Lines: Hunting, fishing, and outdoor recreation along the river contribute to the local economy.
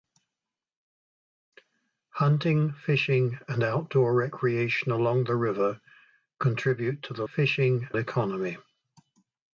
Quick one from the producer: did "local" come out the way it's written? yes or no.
no